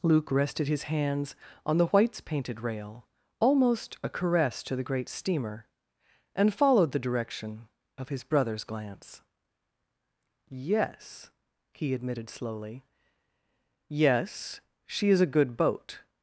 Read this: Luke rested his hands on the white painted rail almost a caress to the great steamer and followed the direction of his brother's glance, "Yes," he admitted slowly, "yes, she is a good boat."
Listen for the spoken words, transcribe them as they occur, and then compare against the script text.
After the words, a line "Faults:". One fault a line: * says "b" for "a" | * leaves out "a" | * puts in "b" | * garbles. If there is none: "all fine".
Luke rested his hands on the whites painted rail almost a caress to the great steamer and followed the direction of his brother's glance, "Yes," he admitted slowly, "yes, she is a good boat."
Faults:
* says "whites" for "white"